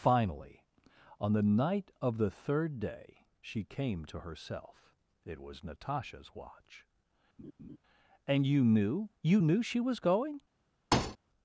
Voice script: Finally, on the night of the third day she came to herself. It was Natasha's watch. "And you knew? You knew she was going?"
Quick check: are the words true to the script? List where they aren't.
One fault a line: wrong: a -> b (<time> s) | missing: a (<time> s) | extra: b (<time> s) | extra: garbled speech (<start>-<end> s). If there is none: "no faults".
no faults